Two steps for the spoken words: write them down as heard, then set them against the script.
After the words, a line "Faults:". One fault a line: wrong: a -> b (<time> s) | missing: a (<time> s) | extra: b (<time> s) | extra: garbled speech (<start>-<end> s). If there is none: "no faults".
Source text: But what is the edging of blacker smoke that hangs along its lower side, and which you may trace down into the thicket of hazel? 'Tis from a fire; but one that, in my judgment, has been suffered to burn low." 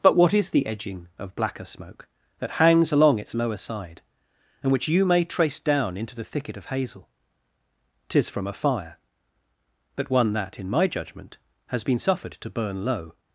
But what is the edging of blacker smoke that hangs along its lower side, and which you may trace down into the thicket of hazel? 'Tis from a fire; but one that, in my judgment, has been suffered to burn low."
Faults:
no faults